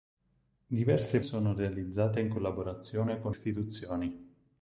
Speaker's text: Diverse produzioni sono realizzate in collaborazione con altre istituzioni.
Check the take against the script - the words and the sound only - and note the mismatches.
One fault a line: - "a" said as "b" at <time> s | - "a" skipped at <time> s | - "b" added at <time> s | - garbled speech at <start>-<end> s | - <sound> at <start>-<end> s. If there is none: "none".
- "produzioni" skipped at 1.2 s
- "altre" skipped at 3.3 s